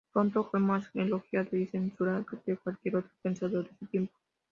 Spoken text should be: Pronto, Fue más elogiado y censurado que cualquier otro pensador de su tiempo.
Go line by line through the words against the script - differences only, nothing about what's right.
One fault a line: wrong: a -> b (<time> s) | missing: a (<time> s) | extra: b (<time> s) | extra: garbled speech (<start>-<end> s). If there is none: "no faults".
no faults